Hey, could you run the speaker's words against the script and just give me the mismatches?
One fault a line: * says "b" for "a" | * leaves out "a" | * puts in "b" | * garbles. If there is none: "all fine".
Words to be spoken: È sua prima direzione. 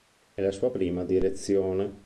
* puts in "la"